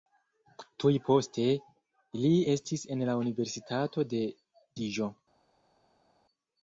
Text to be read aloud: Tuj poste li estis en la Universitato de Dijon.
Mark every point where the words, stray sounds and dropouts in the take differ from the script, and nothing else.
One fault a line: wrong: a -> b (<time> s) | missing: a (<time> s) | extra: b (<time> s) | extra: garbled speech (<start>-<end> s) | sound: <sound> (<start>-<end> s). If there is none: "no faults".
no faults